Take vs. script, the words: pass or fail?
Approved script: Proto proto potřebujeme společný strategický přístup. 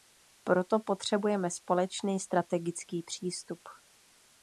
fail